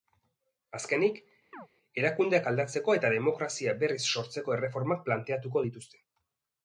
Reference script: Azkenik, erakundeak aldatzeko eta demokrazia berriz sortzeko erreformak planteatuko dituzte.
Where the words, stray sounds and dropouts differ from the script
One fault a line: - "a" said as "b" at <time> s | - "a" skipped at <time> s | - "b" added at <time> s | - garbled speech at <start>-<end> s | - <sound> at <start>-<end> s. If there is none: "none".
- chirp at 1.5-1.7 s